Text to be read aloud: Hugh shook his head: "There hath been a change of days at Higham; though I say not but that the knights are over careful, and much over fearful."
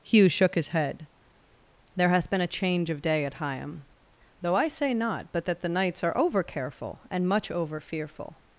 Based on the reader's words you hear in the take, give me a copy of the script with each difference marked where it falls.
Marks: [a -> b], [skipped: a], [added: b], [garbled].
Hugh shook his head: "There hath been a change of [days -> day] at Higham; though I say not but that the knights are over careful, and much over fearful."